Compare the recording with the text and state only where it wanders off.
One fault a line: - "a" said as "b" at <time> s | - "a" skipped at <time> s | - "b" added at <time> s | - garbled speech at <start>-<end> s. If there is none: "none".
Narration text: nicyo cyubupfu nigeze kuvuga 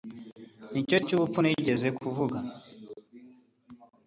none